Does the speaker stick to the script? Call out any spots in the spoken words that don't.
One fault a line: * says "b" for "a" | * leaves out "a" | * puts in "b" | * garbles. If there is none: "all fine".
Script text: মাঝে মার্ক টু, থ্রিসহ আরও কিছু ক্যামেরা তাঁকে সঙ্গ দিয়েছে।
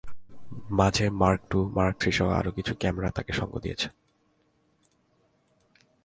* puts in "মার্ক"